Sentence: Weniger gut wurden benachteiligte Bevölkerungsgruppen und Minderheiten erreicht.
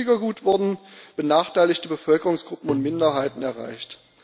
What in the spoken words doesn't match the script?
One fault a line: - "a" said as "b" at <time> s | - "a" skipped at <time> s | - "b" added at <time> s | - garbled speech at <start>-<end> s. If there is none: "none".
none